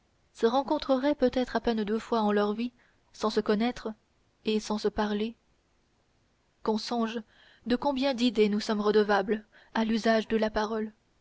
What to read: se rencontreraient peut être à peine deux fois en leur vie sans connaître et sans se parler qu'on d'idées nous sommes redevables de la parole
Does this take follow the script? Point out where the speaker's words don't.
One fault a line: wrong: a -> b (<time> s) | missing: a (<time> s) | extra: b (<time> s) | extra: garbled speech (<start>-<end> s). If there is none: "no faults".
extra: se (3.3 s)
extra: songe de combien (6.8 s)
extra: à l'usage (9.7 s)